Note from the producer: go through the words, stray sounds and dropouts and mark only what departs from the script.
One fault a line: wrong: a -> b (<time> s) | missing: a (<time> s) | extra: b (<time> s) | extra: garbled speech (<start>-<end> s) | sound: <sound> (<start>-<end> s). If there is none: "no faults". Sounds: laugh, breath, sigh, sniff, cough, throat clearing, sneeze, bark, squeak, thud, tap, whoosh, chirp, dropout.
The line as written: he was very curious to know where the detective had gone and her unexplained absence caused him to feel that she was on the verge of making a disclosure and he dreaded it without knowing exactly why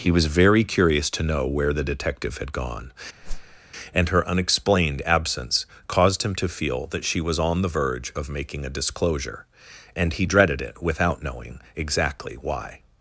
sound: whoosh (3.2-3.6 s)